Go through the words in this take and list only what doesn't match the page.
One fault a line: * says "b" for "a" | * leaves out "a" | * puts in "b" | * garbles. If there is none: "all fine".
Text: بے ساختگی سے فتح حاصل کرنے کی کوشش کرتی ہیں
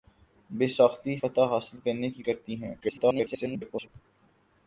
* leaves out "سے"
* leaves out "کوشش"
* garbles